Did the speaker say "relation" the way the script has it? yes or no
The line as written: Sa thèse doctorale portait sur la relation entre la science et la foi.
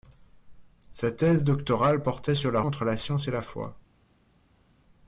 no